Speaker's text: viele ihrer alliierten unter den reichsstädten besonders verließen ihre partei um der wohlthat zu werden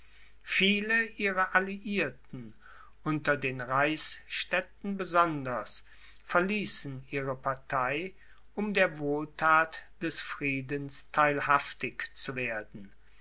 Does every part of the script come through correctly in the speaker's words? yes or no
no